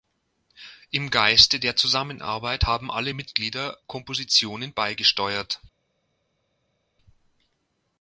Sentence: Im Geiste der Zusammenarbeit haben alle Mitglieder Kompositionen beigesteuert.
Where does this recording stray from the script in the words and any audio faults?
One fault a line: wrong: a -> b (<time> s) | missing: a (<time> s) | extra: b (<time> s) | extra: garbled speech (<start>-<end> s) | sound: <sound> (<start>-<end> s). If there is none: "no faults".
no faults